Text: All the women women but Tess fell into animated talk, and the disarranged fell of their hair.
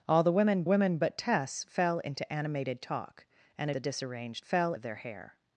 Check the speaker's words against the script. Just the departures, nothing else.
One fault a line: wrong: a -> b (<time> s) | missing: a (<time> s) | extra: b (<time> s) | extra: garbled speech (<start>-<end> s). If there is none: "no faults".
no faults